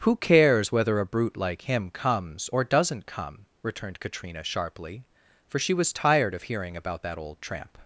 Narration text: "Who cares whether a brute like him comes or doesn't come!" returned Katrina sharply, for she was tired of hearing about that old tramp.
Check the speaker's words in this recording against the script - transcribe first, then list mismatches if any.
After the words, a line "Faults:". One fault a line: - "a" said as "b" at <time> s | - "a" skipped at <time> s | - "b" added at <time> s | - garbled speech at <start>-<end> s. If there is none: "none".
"Who cares whether a brute like him comes or doesn't come!" returned Katrina sharply, for she was tired of hearing about that old tramp.
Faults:
none